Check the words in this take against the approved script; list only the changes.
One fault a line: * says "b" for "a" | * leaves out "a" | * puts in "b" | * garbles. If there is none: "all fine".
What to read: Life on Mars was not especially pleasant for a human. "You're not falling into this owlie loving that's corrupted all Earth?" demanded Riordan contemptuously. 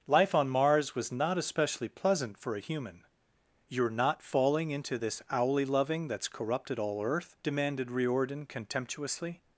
all fine